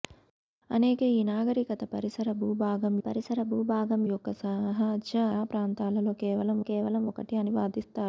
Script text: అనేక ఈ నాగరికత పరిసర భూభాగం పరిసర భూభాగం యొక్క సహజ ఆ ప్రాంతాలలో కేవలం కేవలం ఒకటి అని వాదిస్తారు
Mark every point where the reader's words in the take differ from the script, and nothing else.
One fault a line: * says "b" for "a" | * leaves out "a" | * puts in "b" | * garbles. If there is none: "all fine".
all fine